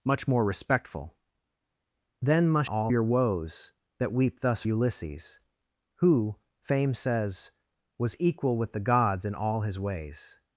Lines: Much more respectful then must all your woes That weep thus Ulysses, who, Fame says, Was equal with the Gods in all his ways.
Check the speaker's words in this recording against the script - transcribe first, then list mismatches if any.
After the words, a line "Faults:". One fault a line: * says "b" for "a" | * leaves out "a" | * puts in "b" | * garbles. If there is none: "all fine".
Much more respectful then must all your woes That weep thus Ulysses, who, Fame says, Was equal with the Gods in all his ways.
Faults:
all fine